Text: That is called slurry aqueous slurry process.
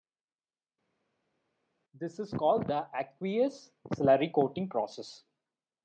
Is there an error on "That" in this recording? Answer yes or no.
yes